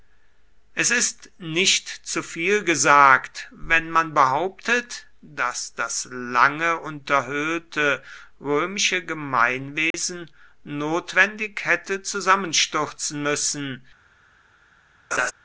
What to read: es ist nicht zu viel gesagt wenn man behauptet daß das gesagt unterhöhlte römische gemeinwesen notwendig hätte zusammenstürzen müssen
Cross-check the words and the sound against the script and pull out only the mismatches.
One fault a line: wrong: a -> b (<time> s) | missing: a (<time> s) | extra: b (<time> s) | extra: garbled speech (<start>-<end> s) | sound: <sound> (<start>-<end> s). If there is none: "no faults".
wrong: gesagt -> lange (6.1 s)
sound: dropout (9.9-9.9 s)
sound: laugh (15.1-15.3 s)